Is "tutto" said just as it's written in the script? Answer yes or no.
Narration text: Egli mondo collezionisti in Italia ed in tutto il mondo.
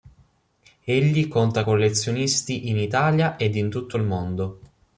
yes